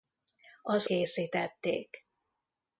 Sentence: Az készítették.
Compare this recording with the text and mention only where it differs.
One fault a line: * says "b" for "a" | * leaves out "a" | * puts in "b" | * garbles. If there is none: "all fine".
all fine